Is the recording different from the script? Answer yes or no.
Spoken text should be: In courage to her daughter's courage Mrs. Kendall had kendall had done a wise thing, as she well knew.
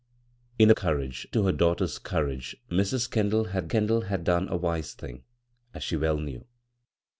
no